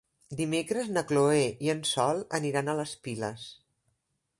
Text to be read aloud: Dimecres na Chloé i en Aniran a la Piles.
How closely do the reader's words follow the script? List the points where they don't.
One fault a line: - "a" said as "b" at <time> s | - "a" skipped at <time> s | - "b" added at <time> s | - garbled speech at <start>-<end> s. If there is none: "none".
- "Sol" added at 1.9 s
- "la" said as "les" at 2.8 s